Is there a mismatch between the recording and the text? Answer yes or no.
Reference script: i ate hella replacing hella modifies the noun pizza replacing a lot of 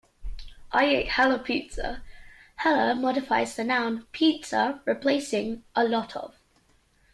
yes